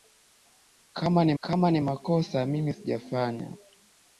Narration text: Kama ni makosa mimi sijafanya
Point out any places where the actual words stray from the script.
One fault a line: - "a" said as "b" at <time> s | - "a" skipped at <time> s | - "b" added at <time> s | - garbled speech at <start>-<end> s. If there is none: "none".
- "kama ni" added at 1.4 s